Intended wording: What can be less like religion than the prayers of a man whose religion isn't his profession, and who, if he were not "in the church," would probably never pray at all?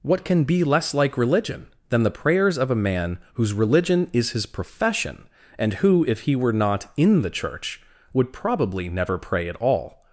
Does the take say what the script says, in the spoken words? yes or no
no